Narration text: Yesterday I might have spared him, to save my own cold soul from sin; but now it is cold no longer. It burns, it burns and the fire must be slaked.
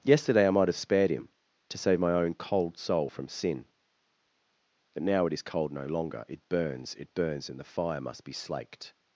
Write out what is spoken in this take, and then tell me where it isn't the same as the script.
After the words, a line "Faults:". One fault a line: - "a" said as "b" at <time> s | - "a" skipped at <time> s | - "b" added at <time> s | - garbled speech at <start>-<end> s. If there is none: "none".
Yesterday I might have spared him, to save my own cold soul from sin; but now it is cold no longer. It burns, it burns and the fire must be slaked.
Faults:
none